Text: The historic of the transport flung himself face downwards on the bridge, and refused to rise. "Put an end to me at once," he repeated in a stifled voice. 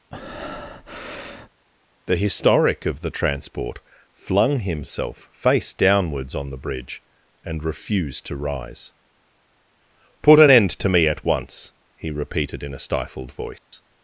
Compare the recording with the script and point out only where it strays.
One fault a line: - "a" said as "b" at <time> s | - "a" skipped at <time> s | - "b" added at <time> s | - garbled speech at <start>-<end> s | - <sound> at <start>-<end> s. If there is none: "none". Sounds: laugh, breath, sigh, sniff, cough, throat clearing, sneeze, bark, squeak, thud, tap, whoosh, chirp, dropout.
- breath at 0.1-1.5 s
- dropout at 13.6-13.7 s